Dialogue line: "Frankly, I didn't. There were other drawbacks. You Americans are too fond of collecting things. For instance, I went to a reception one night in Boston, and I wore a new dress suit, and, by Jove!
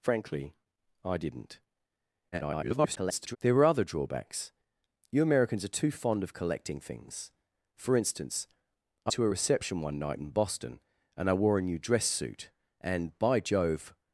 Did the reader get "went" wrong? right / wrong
wrong